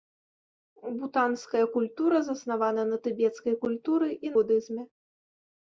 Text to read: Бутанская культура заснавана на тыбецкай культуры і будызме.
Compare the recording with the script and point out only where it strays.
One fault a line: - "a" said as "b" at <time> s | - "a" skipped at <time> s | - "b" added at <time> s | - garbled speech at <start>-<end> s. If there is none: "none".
none